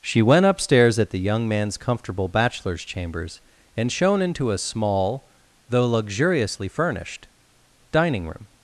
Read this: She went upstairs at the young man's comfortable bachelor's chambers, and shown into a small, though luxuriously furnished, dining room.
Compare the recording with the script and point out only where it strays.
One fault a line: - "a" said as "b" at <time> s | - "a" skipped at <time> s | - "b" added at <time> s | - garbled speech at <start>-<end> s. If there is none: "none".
none